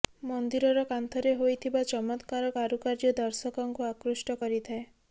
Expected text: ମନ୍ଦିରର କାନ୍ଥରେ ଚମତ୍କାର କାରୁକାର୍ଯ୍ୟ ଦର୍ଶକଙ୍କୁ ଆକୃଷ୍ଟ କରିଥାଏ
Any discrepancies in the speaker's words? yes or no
yes